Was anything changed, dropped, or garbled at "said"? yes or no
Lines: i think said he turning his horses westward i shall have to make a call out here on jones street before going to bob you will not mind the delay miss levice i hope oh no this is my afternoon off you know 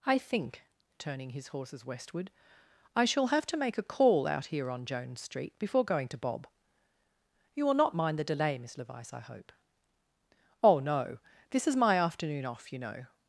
yes